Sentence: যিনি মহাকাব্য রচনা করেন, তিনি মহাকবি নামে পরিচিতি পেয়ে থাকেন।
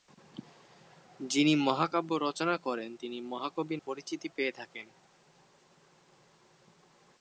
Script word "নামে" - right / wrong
wrong